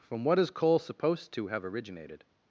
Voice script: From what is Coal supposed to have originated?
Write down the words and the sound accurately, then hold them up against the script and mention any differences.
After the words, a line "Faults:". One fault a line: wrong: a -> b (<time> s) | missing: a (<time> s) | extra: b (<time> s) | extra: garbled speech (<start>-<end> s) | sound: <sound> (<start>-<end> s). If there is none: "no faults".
From what is Coal supposed to have originated?
Faults:
no faults